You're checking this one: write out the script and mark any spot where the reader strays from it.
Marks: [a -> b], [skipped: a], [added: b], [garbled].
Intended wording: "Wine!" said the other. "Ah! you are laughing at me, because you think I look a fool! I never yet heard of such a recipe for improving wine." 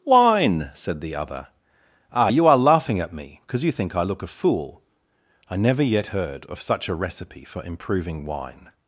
"Wine!" said the other. "Ah! you are laughing at me, because you think I look a fool! I never yet heard of such a recipe for improving wine."